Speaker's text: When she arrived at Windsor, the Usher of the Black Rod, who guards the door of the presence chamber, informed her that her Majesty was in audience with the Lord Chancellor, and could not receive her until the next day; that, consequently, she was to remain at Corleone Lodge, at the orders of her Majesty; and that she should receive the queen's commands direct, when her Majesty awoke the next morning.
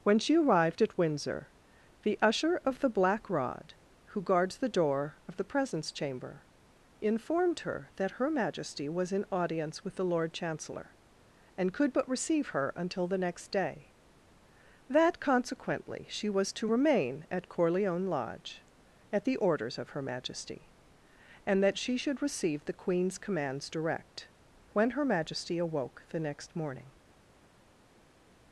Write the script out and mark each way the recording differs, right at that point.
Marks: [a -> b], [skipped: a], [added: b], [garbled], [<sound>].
When she arrived at Windsor, the Usher of the Black Rod, who guards the door of the presence chamber, informed her that her Majesty was in audience with the Lord Chancellor, and could [not -> but] receive her until the next day; that, consequently, she was to remain at Corleone Lodge, at the orders of her Majesty; and that she should receive the queen's commands direct, when her Majesty awoke the next morning.